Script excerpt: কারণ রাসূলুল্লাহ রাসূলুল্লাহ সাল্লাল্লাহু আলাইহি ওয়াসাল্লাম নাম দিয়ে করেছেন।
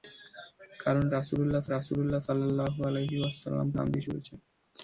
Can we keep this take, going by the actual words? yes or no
yes